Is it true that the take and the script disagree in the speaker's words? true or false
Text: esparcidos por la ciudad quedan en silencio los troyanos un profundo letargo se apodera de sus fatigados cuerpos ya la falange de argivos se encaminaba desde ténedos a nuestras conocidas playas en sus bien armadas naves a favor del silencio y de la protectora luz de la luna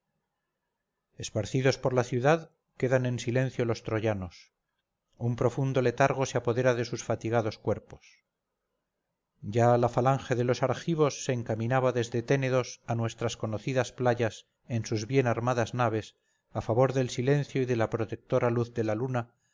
true